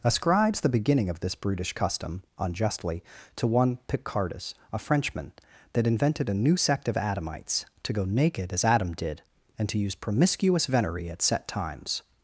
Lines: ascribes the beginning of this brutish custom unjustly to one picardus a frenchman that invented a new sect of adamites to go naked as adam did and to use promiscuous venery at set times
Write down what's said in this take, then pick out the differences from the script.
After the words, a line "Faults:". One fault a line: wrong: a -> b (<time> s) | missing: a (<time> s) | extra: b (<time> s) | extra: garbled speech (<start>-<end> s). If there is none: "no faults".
ascribes the beginning of this brutish custom unjustly to one picardus a frenchman that invented a new sect of adamites to go naked as adam did and to use promiscuous venery at set times
Faults:
no faults